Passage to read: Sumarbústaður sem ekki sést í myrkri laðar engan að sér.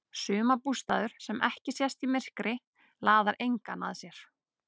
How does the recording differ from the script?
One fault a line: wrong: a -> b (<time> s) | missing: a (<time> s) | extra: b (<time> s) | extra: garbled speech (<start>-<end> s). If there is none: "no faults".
no faults